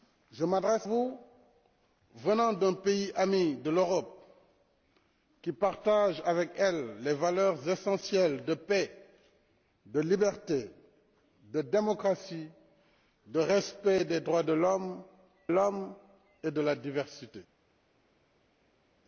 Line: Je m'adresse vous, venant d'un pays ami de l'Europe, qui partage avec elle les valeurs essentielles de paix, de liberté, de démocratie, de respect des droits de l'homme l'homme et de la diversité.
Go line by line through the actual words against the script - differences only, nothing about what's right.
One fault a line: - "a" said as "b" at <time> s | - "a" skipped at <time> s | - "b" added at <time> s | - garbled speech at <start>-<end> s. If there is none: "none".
none